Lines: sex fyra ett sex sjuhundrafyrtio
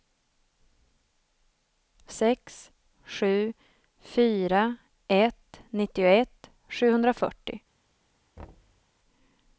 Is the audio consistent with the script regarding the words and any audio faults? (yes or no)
no